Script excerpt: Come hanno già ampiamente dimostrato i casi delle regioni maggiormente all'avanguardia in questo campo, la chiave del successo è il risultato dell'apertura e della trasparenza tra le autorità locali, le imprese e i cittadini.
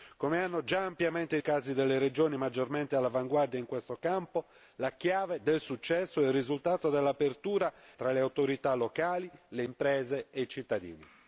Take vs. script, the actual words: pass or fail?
fail